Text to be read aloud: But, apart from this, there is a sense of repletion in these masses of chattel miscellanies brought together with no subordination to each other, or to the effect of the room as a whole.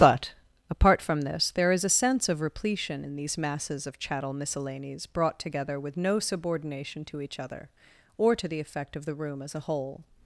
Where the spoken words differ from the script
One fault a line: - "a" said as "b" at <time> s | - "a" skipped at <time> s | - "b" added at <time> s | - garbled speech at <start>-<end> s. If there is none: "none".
none